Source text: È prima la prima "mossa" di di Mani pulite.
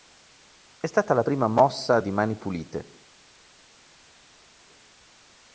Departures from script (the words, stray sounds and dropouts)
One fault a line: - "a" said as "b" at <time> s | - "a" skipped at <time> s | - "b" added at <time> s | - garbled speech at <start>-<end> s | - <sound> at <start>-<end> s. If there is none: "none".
- "prima" said as "stata" at 0.9 s
- "di" skipped at 2.1 s